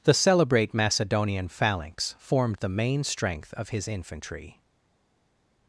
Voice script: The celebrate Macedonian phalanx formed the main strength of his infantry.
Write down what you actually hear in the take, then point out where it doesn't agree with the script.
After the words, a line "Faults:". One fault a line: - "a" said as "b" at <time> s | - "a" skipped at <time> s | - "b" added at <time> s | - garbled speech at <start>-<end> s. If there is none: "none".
The celebrate Macedonian phalanx formed the main strength of his infantry.
Faults:
none